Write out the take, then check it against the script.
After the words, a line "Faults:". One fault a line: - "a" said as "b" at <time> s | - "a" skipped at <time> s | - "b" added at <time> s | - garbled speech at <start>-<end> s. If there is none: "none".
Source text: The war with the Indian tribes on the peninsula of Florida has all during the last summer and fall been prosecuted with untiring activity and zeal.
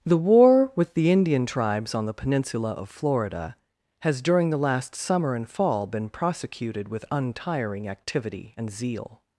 The war with the Indian tribes on the peninsula of Florida has during the last summer and fall been prosecuted with untiring activity and zeal.
Faults:
- "all" skipped at 4.2 s